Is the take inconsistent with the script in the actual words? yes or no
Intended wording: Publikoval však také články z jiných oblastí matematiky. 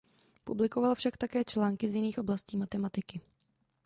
no